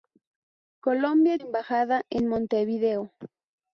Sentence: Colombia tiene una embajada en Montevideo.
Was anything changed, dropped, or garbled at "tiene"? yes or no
yes